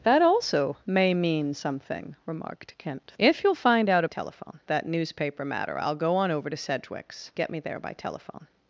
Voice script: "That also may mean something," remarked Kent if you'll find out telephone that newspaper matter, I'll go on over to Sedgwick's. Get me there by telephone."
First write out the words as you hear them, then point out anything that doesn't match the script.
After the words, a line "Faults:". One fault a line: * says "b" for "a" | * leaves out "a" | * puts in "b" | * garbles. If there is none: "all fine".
"That also may mean something," remarked Kent if you'll find out telephone that newspaper matter, I'll go on over to Sedgwick's. Get me there by telephone."
Faults:
all fine